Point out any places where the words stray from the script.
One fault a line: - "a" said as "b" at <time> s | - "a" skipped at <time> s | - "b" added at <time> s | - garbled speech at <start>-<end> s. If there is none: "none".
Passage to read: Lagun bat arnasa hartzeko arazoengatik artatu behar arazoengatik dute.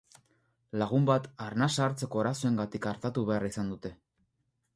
- "arazoengatik" said as "izan" at 3.5 s